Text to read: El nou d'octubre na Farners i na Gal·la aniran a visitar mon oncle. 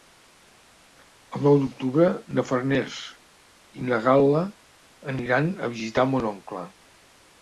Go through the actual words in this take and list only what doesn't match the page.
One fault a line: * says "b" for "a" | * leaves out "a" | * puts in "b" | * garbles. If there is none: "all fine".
all fine